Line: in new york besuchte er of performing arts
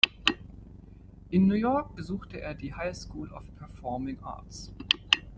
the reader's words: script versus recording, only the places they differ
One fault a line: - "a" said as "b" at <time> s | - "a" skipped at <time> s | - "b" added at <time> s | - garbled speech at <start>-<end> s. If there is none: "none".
- "die high school" added at 2.5 s